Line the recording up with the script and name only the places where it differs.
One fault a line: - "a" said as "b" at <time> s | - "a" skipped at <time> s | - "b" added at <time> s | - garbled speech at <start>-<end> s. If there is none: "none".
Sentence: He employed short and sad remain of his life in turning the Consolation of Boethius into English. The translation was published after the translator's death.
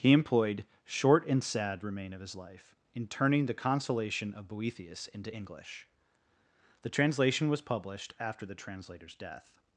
none